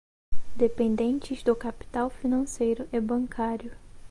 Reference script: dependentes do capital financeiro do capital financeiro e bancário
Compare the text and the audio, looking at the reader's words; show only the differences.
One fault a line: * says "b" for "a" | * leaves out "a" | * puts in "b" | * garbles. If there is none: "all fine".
* leaves out "do capital financeiro"